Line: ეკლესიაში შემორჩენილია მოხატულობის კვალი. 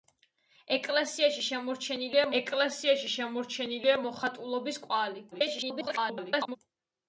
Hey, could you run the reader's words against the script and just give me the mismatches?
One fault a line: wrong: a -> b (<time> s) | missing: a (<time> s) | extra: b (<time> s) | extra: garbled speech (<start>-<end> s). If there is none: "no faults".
extra: ეკლესიაში შემორჩენილია (2.4 s)
extra: garbled speech (5.3-6.6 s)